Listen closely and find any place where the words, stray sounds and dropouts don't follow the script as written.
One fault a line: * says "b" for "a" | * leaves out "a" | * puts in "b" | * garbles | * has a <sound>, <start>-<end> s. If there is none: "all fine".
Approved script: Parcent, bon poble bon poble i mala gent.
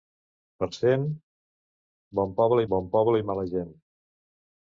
all fine